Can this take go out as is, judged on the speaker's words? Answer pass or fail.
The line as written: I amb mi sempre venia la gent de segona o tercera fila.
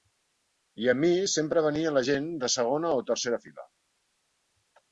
pass